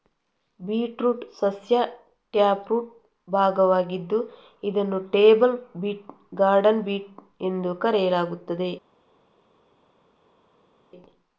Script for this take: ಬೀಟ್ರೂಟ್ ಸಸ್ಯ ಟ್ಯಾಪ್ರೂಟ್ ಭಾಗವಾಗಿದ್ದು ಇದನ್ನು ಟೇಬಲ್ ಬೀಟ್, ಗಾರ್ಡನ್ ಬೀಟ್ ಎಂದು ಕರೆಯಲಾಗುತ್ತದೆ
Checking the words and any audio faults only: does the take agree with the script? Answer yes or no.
yes